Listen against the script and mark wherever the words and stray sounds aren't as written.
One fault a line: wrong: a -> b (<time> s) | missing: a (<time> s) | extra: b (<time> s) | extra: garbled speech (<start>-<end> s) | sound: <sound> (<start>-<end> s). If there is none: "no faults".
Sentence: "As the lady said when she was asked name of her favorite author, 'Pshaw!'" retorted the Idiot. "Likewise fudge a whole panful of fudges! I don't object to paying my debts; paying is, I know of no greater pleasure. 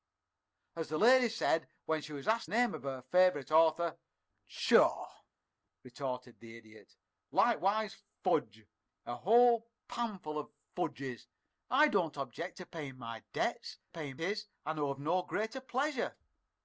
no faults